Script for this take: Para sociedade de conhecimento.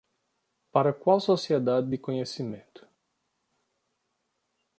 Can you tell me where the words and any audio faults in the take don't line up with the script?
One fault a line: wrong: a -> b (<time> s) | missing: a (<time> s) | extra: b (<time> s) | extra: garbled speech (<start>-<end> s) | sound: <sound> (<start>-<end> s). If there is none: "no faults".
extra: qual (0.9 s)